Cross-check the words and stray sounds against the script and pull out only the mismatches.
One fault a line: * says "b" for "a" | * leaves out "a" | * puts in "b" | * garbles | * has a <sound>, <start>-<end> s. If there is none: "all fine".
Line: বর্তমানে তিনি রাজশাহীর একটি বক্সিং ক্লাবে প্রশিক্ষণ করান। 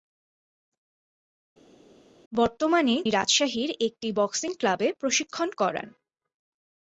* leaves out "তিনি"